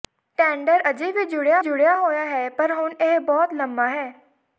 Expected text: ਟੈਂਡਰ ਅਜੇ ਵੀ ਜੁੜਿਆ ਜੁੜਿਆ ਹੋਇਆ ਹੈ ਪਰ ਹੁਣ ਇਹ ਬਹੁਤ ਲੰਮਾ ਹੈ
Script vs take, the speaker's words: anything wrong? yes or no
no